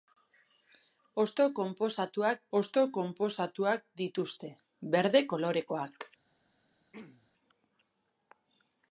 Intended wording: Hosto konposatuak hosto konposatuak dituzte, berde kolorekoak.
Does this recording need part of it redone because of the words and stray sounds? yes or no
yes